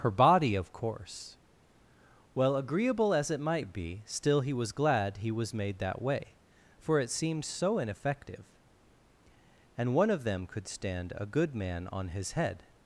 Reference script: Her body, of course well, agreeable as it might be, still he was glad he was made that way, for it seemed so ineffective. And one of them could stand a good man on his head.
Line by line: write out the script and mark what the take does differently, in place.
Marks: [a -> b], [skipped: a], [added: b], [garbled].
Her body, of course well, agreeable as it might be, still he was glad he was made that way, for it seemed so ineffective. And one of them could stand a good man on his head.